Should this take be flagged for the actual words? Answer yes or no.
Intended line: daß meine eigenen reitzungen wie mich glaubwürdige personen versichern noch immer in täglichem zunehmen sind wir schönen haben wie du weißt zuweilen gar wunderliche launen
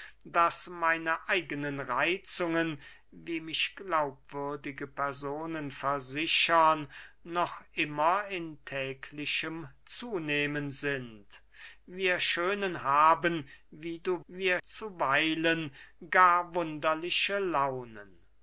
yes